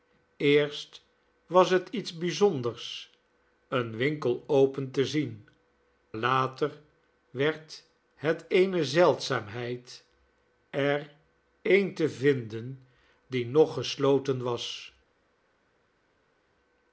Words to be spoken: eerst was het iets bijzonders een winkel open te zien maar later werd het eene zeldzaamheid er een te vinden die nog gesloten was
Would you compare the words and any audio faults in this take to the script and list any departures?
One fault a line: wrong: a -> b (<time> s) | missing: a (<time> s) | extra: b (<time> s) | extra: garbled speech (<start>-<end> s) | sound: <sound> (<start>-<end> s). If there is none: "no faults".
missing: maar (5.5 s)